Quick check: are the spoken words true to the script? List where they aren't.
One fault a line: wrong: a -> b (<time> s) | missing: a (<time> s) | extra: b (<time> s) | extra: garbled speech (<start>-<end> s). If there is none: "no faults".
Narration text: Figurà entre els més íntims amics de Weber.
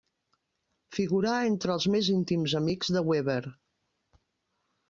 no faults